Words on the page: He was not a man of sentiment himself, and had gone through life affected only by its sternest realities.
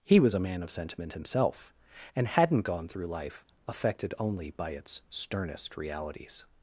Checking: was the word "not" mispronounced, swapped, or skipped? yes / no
yes